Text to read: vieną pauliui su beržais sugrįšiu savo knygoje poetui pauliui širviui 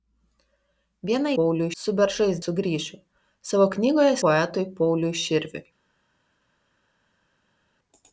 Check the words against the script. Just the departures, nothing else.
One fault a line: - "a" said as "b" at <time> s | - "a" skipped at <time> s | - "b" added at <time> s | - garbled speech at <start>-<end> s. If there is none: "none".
none